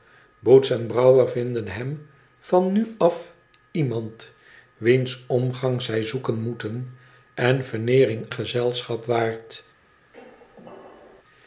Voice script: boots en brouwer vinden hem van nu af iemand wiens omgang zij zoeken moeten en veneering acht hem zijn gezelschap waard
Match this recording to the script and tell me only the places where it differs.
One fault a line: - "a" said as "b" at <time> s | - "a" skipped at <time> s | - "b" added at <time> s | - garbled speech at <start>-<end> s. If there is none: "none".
- "acht hem zijn" skipped at 8.3 s